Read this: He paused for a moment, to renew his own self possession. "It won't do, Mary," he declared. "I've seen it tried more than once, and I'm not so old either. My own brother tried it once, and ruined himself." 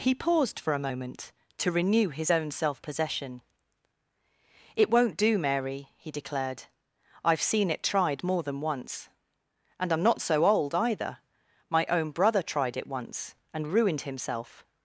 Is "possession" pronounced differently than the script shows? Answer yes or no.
no